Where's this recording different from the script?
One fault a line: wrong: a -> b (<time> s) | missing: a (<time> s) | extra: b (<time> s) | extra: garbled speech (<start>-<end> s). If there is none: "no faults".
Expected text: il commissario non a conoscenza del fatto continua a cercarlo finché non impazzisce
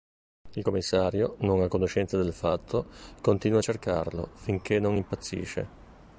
no faults